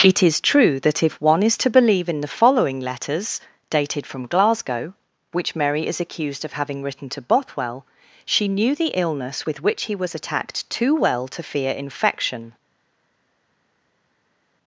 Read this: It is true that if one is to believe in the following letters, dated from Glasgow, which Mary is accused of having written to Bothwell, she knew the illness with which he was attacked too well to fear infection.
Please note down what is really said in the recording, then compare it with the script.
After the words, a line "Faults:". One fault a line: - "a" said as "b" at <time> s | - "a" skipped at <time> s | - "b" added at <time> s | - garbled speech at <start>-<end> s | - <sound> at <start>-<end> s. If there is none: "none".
It is true that if one is to believe in the following letters, dated from Glasgow, which Mary is accused of having written to Bothwell, she knew the illness with which he was attacked too well to fear infection.
Faults:
none